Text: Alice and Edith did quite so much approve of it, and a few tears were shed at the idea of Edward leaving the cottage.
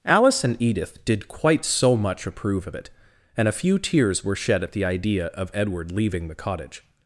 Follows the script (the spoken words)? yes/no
yes